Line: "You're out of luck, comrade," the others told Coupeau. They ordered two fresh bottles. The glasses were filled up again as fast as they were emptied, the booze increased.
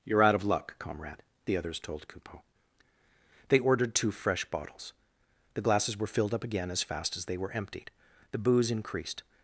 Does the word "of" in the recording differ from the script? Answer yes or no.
no